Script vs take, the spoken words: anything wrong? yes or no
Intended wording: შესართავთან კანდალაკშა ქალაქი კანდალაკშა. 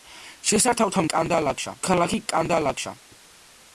no